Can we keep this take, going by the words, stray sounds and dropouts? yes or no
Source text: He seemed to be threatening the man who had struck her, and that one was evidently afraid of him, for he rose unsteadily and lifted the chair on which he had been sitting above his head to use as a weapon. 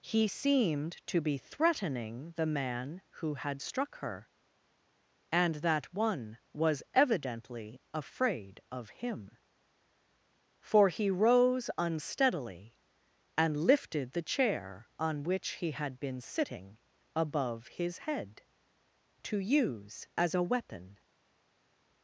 yes